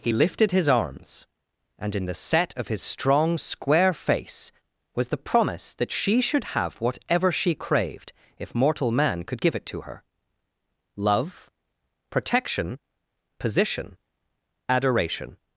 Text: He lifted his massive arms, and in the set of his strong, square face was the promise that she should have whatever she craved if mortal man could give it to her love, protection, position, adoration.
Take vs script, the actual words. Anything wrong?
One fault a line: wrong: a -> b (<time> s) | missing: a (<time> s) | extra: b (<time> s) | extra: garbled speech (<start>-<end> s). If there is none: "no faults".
missing: massive (0.7 s)